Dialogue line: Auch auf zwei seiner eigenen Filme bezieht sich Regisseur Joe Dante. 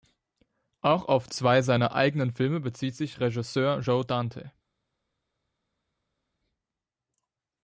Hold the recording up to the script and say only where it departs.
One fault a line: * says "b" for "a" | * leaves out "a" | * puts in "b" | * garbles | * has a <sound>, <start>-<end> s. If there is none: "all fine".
all fine